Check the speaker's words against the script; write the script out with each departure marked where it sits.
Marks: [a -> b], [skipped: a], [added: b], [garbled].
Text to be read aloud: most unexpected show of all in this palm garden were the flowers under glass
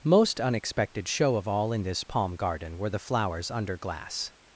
most unexpected show of all in this palm garden were the flowers under glass